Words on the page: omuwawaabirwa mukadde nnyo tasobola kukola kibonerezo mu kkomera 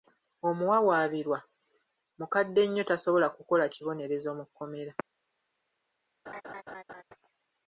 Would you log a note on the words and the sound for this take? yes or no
yes